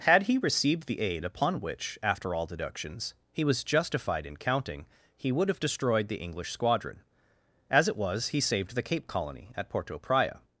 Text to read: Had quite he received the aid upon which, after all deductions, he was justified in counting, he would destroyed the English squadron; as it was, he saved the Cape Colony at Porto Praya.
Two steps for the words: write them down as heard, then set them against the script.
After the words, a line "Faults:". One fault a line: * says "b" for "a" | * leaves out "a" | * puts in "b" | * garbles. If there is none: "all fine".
Had he received the aid upon which, after all deductions, he was justified in counting, he would have destroyed the English squadron; as it was, he saved the Cape Colony at Porto Praya.
Faults:
* leaves out "quite"
* puts in "have"